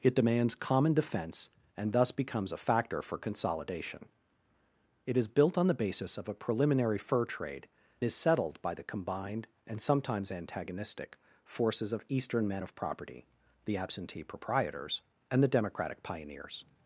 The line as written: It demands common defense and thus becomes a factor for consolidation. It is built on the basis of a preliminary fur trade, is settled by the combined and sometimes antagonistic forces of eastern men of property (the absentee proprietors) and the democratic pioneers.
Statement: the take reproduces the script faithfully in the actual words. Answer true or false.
true